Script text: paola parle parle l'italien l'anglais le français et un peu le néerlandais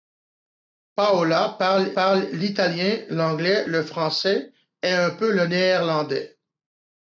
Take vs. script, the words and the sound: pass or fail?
pass